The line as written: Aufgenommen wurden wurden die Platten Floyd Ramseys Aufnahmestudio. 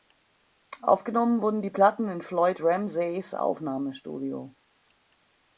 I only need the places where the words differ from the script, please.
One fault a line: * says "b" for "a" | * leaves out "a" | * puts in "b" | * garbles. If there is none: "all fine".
* leaves out "wurden"
* puts in "in"